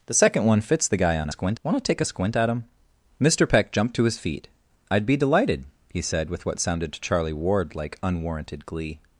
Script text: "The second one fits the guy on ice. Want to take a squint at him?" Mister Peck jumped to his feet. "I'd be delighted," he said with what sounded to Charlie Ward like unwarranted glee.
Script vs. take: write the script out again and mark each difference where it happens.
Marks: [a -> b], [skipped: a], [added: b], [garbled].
"The second one fits the guy on [ice. -> squint] Want to take a squint at him?" Mister Peck jumped to his feet. "I'd be delighted," he said with what sounded to Charlie Ward like unwarranted glee.